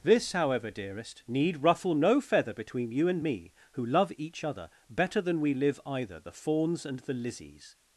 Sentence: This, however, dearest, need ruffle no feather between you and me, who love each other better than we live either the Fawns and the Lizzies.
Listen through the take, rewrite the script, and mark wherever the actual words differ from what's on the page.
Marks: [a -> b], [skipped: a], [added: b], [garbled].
This, however, dearest, need ruffle no feather between you and me, who love each other better than we live either the Fawns and the Lizzies.